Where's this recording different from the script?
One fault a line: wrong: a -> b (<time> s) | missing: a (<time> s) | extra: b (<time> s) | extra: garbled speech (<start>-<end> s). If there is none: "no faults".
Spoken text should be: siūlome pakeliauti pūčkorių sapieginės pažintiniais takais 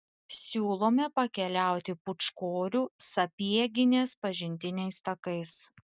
no faults